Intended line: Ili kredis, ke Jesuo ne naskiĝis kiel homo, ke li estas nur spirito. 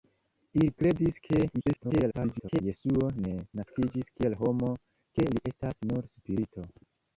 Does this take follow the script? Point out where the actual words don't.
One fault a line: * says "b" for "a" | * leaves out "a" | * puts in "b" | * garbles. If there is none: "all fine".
* garbles